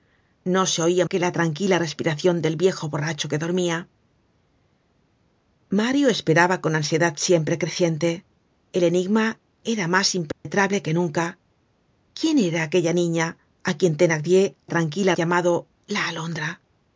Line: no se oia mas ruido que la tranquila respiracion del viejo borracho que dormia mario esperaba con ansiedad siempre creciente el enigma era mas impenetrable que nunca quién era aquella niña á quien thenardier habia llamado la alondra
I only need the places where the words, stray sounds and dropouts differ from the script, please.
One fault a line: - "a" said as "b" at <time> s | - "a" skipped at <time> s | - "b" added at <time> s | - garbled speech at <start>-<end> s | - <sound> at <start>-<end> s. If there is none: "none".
- "mas ruido" skipped at 1.1 s
- dropout at 10.3-10.5 s
- "habia" said as "tranquila" at 14.7 s